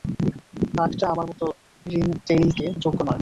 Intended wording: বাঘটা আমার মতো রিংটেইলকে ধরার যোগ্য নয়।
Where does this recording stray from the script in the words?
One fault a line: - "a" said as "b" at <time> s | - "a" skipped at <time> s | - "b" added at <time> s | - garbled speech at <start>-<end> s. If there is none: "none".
- "ধরার" skipped at 2.6 s